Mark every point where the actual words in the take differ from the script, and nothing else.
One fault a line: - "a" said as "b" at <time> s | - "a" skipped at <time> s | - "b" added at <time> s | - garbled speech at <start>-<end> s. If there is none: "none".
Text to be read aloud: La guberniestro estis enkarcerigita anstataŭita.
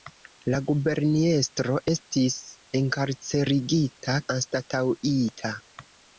none